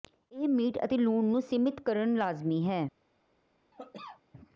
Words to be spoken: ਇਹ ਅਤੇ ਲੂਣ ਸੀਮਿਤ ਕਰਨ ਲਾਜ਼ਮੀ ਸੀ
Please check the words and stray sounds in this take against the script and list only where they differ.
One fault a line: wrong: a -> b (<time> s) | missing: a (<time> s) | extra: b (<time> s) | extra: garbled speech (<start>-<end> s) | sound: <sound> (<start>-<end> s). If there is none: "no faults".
extra: ਮੀਟ (0.5 s)
extra: ਨੂੰ (1.2 s)
wrong: ਸੀ -> ਹੈ (2.6 s)
sound: cough (3.7-4.2 s)